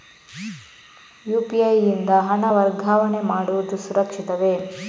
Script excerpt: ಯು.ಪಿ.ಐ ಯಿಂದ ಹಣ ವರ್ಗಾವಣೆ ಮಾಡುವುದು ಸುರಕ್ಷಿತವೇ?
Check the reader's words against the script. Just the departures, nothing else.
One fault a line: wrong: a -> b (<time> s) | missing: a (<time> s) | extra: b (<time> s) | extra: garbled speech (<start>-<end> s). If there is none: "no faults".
no faults